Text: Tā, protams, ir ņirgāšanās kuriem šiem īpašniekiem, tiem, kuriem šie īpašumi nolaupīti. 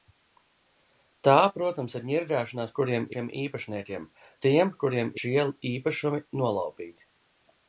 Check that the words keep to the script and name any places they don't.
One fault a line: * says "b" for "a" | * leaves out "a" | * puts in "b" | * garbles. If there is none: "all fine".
all fine